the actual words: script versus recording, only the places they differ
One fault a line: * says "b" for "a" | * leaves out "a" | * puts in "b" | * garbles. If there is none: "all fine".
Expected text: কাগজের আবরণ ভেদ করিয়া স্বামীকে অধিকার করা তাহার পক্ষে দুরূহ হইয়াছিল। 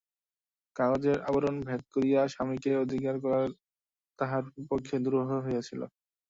all fine